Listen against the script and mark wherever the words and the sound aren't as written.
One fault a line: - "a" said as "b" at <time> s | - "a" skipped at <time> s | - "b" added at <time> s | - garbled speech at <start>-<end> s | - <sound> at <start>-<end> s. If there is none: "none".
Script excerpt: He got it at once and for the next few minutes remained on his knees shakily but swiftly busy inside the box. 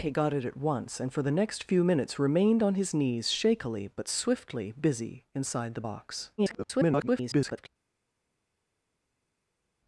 - garbled speech at 6.4-7.7 s